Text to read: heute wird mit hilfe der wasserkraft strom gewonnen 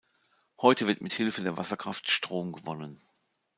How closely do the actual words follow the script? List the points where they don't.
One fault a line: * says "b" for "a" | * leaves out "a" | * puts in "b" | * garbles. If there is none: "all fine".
all fine